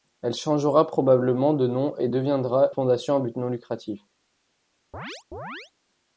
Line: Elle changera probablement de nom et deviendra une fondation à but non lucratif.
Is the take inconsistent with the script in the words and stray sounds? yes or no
yes